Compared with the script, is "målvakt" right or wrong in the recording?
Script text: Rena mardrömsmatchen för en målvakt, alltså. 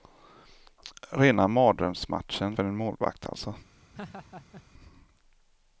right